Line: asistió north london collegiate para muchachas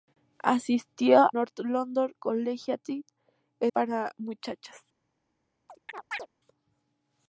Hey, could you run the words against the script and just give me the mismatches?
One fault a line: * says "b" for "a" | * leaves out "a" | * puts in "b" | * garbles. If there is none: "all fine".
all fine